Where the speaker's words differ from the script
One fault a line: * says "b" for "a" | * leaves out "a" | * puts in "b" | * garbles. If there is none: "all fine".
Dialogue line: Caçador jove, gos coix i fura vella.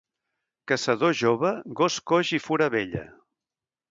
all fine